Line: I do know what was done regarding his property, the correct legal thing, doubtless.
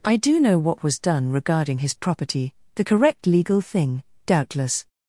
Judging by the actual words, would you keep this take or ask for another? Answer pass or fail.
pass